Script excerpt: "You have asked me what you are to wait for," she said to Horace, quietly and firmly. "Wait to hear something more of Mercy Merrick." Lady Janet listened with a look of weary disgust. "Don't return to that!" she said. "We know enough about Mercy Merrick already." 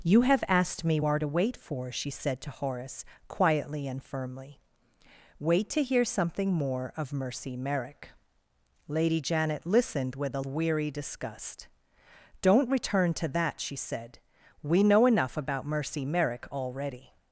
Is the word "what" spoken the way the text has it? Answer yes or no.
no